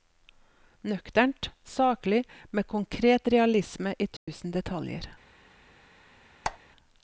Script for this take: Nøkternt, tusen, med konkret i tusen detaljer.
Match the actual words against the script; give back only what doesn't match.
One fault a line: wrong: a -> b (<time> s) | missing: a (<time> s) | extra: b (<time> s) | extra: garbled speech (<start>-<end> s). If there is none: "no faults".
wrong: tusen -> saklig (1.6 s)
extra: realisme (3.3 s)